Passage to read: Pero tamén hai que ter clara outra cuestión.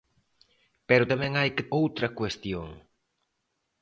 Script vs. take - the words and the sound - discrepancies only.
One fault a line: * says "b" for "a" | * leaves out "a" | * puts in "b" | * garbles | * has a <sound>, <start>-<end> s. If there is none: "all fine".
* leaves out "ter clara"